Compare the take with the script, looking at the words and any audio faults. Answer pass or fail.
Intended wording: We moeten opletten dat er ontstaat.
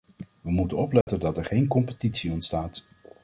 fail